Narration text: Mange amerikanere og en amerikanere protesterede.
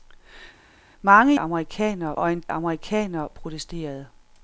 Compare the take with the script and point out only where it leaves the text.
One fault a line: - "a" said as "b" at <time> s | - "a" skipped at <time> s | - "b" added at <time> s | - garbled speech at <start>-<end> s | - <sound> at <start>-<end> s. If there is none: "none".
none